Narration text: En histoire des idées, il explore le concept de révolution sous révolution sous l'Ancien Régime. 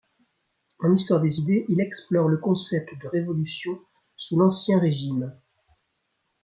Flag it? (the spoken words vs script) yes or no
yes